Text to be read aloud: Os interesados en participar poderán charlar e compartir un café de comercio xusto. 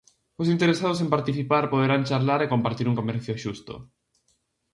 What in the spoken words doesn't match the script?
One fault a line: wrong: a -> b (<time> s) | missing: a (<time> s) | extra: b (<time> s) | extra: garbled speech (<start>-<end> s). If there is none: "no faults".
missing: café de (3.0 s)